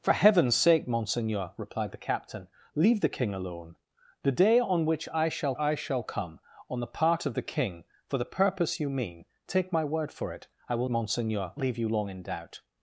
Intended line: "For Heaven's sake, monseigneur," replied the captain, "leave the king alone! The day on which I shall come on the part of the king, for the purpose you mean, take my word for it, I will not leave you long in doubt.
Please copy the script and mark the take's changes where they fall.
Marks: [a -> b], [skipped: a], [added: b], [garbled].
"For Heaven's sake, monseigneur," replied the captain, "leave the king alone! The day on which I shall [added: I shall] come on the part of the king, for the purpose you mean, take my word for it, I will [not -> monseigneur] leave you long in doubt.